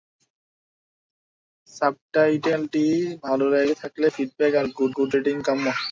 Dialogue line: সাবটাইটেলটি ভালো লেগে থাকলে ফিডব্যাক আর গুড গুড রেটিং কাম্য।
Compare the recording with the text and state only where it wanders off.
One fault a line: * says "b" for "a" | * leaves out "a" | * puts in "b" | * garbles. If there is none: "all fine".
all fine